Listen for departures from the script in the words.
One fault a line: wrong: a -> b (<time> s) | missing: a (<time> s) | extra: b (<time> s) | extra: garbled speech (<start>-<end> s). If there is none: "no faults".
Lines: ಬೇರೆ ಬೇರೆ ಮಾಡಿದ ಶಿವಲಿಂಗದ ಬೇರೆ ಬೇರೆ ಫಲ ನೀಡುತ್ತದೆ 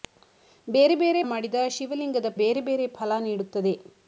no faults